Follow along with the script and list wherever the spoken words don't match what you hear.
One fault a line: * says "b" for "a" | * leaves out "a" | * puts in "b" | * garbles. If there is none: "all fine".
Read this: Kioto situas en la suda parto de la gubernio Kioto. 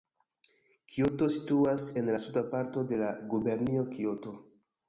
all fine